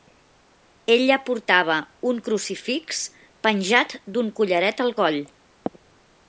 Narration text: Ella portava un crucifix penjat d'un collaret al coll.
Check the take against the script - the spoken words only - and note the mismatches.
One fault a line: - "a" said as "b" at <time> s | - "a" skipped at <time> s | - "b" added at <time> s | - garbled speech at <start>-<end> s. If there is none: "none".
none